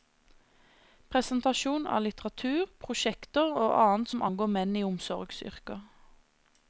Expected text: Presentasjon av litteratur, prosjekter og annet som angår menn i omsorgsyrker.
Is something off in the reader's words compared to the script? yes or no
no